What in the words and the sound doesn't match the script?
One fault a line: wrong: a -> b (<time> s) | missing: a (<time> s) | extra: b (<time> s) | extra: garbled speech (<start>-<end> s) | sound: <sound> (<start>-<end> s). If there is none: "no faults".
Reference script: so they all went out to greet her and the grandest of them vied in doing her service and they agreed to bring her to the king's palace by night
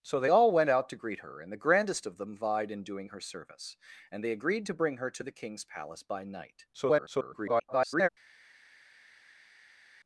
extra: garbled speech (6.7-8.1 s)